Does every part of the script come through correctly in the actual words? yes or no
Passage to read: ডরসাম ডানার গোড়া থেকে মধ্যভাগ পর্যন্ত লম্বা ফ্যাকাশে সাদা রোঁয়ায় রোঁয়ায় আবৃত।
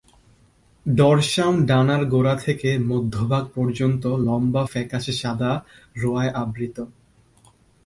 no